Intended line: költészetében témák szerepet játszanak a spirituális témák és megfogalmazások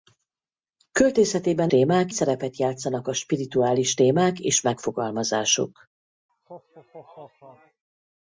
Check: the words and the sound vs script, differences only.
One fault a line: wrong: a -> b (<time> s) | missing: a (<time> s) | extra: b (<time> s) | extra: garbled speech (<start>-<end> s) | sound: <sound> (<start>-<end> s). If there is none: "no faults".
sound: laugh (6.3-7.8 s)